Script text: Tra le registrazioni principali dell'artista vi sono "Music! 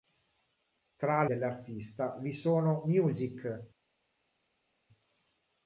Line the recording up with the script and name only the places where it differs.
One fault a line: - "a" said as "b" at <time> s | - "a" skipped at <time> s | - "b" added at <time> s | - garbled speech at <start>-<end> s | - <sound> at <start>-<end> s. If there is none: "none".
- "le registrazioni principali" skipped at 1.2 s